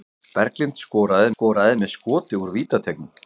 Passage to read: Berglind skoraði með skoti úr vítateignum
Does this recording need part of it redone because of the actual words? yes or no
yes